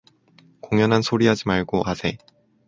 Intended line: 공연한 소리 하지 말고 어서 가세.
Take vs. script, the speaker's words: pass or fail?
fail